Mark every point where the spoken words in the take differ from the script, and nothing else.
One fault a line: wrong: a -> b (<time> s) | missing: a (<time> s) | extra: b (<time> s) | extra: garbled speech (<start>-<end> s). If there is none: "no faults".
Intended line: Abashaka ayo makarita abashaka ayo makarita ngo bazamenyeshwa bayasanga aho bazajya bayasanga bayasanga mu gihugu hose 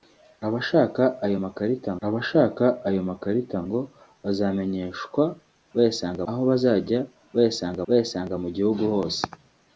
no faults